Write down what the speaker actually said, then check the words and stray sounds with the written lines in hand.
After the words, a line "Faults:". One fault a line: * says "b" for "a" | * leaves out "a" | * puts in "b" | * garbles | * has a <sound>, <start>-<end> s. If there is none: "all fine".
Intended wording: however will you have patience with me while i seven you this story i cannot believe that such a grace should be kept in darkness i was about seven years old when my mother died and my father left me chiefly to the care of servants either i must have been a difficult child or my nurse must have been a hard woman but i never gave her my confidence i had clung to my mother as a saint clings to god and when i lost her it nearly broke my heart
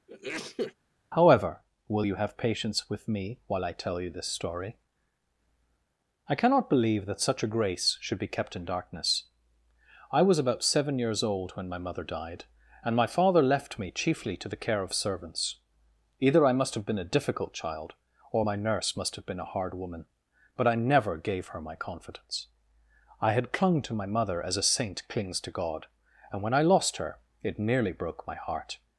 however will you have patience with me while i tell you this story i cannot believe that such a grace should be kept in darkness i was about seven years old when my mother died and my father left me chiefly to the care of servants either i must have been a difficult child or my nurse must have been a hard woman but i never gave her my confidence i had clung to my mother as a saint clings to god and when i lost her it nearly broke my heart
Faults:
* has a sneeze, 0.1-0.7 s
* says "tell" for "seven"